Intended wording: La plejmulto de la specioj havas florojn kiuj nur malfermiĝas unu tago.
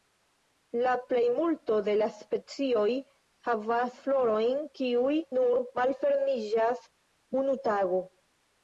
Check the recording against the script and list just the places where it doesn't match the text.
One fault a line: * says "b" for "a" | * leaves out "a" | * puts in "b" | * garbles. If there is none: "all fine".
all fine